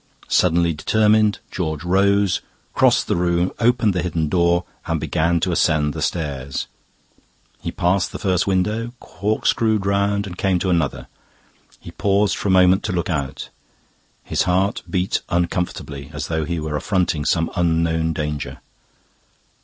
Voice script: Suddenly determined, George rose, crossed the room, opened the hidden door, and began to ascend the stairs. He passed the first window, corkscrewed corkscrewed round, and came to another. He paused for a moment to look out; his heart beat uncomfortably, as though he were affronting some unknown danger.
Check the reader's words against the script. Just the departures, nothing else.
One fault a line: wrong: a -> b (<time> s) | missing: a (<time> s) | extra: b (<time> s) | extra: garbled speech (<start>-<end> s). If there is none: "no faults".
missing: corkscrewed (9.8 s)